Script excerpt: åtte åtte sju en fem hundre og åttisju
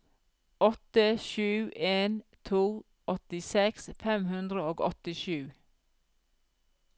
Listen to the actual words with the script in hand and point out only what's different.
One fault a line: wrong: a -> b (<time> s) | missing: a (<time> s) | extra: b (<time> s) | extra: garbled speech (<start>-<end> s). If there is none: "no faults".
missing: åtte (1.2 s)
extra: to åttiseks (2.5 s)